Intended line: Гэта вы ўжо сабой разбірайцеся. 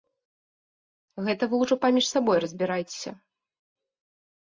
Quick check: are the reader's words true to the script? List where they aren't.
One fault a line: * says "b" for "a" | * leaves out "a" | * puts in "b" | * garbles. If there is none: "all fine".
* puts in "паміж"